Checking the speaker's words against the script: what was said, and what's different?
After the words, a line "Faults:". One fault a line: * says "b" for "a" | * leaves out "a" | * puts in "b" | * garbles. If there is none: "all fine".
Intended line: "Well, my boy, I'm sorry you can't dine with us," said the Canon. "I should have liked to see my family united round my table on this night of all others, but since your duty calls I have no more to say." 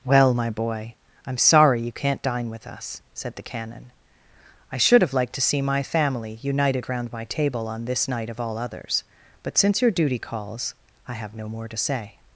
"Well, my boy, I'm sorry you can't dine with us," said the Canon. "I should have liked to see my family united round my table on this night of all others, but since your duty calls I have no more to say."
Faults:
all fine